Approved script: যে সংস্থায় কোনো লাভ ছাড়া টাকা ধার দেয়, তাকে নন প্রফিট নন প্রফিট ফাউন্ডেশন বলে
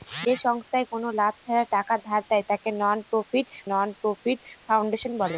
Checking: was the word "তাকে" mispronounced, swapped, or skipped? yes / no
no